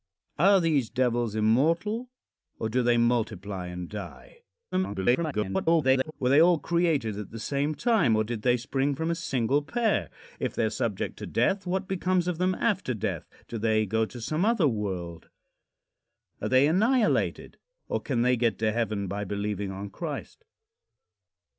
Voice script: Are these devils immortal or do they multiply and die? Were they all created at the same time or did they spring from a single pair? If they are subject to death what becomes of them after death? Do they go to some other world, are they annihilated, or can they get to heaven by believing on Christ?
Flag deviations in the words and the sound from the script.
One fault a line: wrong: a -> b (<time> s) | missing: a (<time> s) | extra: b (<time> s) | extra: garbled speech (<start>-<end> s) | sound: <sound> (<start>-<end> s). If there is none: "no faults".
extra: garbled speech (4.7-6.1 s)